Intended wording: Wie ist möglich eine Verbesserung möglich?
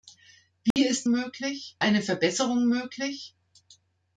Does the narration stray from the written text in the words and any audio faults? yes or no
yes